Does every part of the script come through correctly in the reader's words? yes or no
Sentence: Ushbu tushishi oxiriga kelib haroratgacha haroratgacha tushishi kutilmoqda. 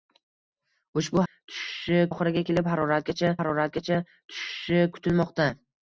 yes